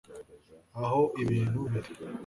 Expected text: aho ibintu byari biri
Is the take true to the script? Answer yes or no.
no